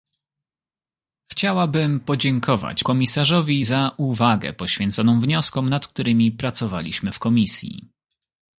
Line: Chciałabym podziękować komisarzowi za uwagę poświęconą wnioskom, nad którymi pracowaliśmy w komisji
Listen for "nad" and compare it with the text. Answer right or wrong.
right